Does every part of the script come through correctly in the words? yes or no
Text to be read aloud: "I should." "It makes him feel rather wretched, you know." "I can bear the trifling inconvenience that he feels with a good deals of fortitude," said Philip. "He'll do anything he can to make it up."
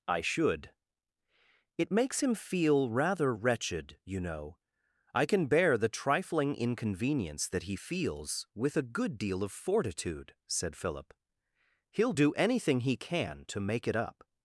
no